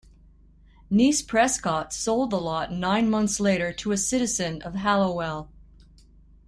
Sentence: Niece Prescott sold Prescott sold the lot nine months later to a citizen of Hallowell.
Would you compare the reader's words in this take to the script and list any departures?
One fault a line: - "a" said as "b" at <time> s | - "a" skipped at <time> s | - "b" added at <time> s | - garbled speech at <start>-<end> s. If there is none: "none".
- "Prescott sold" skipped at 2.3 s